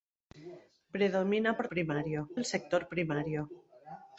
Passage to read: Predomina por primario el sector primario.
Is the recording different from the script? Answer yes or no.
no